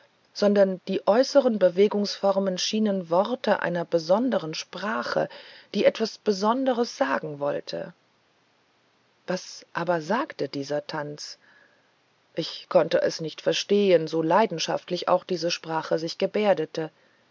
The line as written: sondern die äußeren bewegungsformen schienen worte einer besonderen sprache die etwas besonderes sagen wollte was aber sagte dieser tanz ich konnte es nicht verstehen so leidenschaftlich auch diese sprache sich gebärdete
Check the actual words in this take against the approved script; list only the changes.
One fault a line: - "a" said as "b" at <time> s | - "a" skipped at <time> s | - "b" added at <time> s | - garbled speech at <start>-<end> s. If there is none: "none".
none